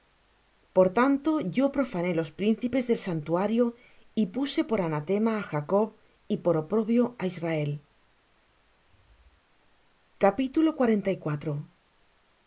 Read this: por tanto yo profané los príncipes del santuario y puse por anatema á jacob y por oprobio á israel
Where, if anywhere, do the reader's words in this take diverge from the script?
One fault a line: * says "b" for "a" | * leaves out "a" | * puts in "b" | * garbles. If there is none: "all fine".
all fine